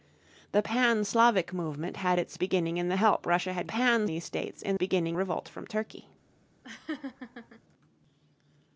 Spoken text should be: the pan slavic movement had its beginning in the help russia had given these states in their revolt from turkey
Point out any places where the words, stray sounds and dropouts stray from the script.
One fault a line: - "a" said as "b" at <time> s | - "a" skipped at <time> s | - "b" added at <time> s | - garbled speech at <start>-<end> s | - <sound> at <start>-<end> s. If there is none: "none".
- "given" said as "pan" at 3.7 s
- "their" said as "beginning" at 4.7 s
- laugh at 6.6-7.6 s